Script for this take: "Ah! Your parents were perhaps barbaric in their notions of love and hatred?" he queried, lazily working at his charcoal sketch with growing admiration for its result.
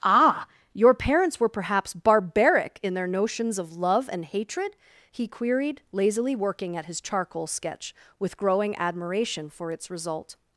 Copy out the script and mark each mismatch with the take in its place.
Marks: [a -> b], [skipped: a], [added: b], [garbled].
"Ah! Your parents were perhaps barbaric in their notions of love and hatred?" he queried, lazily working at his charcoal sketch with growing admiration for its result.